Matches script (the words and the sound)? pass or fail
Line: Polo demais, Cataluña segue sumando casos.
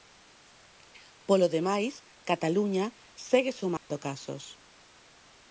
fail